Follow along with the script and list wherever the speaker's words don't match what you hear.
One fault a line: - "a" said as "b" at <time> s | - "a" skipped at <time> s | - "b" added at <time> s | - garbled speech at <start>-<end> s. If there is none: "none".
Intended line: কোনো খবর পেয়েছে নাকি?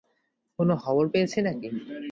none